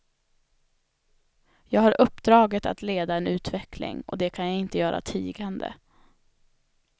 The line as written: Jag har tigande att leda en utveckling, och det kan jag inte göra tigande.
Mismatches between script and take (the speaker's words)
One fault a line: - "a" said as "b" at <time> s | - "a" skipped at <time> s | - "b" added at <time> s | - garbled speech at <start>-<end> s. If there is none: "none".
- "tigande" said as "uppdraget" at 2.0 s